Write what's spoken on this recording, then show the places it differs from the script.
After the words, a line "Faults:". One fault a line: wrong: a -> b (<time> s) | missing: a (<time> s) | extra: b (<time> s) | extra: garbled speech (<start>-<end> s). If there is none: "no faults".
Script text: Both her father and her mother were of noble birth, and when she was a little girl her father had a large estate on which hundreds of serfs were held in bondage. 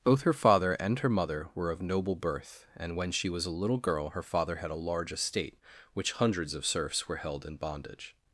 Both her father and her mother were of noble birth, and when she was a little girl her father had a large estate which hundreds of serfs were held in bondage.
Faults:
missing: on (5.6 s)